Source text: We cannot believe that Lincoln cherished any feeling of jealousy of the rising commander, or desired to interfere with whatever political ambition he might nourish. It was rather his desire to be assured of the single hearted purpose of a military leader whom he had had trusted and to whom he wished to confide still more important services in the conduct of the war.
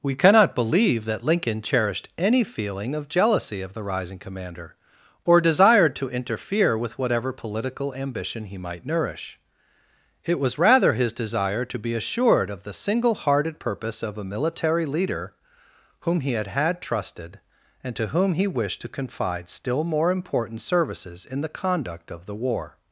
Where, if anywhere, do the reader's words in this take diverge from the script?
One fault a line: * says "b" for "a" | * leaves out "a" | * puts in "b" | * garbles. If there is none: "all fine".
all fine